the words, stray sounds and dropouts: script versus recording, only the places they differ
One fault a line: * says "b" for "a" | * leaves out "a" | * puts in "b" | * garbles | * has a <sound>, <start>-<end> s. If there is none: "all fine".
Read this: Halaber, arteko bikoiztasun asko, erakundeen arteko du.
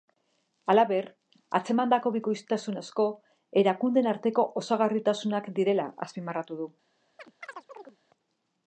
* says "atzemandako" for "arteko"
* puts in "osagarritasunak direla azpimarratu"
* has a chirp, 7.2-8.0 s